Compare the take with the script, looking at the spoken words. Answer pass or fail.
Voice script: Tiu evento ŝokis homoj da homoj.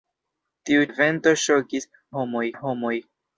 pass